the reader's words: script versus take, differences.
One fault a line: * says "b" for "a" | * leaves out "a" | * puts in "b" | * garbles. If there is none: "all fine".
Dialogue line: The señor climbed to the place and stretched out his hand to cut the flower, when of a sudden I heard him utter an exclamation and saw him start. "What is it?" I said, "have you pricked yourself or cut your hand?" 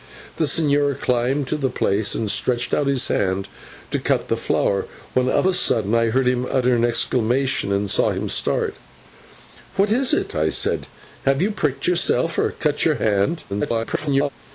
* garbles